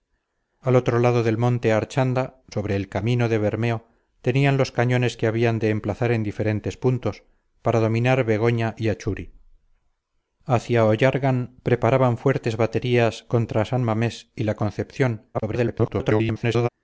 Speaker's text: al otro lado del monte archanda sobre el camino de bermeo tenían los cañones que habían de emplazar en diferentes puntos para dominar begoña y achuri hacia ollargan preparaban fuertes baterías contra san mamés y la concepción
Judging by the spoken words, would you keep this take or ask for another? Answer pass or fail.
fail